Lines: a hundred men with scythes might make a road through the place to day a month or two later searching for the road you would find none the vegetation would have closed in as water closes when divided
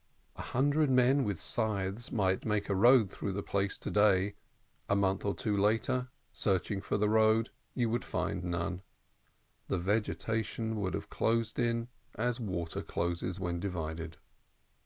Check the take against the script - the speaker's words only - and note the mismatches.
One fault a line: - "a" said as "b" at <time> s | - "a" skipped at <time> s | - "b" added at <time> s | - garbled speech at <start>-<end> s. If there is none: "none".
none